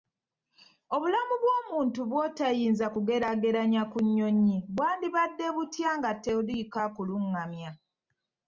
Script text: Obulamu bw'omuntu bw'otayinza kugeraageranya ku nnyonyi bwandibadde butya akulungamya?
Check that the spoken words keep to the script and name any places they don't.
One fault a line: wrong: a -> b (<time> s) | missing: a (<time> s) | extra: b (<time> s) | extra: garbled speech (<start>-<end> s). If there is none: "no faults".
extra: nga toliiko (6.0 s)